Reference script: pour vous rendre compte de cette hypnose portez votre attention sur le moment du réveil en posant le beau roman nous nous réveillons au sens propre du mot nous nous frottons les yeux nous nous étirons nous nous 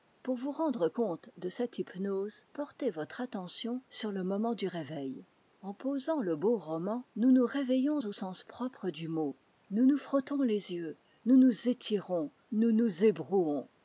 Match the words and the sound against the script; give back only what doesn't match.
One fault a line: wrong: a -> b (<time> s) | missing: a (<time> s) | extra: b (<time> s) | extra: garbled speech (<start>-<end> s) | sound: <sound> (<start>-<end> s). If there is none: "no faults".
no faults